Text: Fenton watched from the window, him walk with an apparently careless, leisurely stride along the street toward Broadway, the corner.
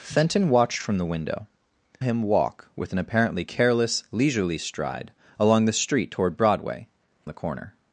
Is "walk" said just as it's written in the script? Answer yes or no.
yes